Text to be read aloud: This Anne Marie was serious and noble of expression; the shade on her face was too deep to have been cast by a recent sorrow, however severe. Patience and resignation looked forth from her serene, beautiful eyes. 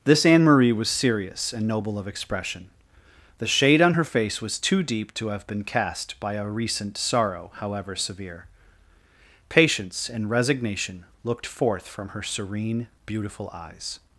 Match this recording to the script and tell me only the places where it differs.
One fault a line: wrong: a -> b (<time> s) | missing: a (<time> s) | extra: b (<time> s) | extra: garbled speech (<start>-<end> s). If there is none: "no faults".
no faults